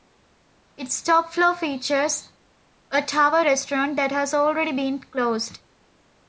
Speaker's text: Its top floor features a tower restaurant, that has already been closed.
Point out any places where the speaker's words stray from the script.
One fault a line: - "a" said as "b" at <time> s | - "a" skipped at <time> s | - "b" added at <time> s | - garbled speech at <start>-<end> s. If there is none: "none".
none